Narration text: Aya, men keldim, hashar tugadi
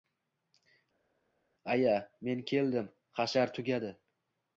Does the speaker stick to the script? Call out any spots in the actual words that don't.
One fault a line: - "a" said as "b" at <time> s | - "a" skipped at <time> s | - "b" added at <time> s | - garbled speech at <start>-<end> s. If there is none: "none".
none